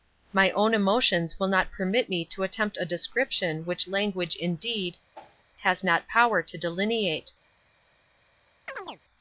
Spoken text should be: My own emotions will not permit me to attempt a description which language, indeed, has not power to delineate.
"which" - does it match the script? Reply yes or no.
yes